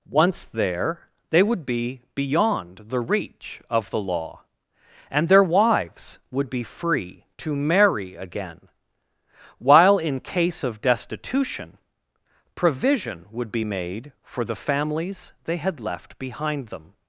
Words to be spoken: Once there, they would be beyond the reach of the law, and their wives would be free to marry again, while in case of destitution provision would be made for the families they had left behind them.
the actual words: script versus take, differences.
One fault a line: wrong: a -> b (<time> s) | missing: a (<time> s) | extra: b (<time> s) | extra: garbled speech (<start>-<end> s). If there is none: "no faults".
no faults